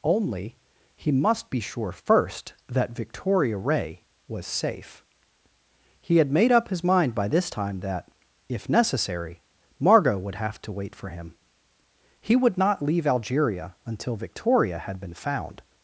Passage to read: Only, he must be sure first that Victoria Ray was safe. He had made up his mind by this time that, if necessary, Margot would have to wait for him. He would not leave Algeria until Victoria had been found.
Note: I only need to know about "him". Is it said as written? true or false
true